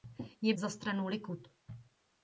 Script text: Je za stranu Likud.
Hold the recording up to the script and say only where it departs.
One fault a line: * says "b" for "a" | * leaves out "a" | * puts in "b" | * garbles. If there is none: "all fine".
all fine